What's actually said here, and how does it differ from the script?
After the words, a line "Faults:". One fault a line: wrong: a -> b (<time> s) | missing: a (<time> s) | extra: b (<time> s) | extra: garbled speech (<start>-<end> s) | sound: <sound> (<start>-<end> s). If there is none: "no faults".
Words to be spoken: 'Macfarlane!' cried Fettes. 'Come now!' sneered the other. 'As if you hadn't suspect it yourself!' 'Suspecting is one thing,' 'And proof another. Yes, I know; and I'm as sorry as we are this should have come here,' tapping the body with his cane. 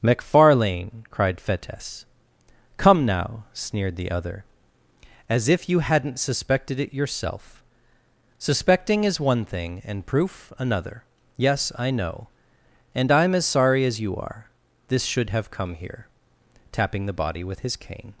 'Macfarlane!' cried Fettes. 'Come now!' sneered the other. 'As if you hadn't suspected it yourself!' 'Suspecting is one thing,' 'And proof another. Yes, I know; and I'm as sorry as you are this should have come here,' tapping the body with his cane.
Faults:
wrong: suspect -> suspected (6.2 s)
wrong: we -> you (14.0 s)